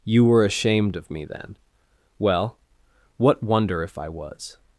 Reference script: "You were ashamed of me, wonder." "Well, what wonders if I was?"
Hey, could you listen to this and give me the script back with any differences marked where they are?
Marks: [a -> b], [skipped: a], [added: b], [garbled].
"You were ashamed of me, [wonder." -> then] "Well, what [wonders -> wonder] if I was?"